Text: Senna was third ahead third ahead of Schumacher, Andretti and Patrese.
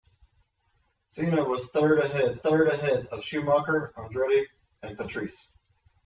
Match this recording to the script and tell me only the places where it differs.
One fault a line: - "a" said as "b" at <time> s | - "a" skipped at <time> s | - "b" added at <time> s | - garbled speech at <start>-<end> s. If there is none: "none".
none